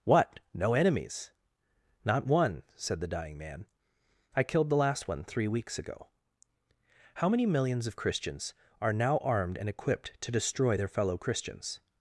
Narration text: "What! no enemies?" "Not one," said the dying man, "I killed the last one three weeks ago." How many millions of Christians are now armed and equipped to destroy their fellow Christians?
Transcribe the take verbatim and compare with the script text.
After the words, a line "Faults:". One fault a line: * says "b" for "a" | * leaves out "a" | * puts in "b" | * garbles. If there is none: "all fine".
"What! no enemies?" "Not one," said the dying man, "I killed the last one three weeks ago." How many millions of Christians are now armed and equipped to destroy their fellow Christians?
Faults:
all fine